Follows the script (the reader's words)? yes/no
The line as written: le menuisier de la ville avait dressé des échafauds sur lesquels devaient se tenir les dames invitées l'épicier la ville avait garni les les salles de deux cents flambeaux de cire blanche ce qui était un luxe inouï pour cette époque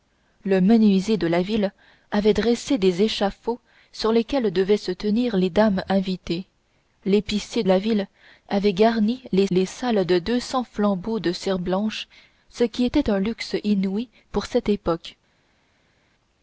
yes